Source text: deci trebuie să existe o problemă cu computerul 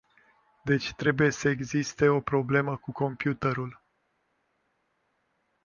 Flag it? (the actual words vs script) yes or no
no